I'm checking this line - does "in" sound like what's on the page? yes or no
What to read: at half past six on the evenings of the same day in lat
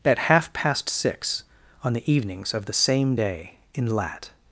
yes